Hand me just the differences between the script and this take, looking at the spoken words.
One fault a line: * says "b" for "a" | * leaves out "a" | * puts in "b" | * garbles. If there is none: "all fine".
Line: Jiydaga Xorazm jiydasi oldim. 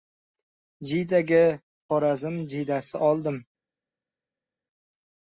all fine